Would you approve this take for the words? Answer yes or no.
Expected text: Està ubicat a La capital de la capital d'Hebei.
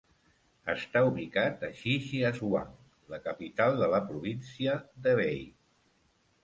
no